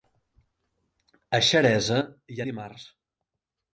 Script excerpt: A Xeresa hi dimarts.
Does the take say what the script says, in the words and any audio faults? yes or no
yes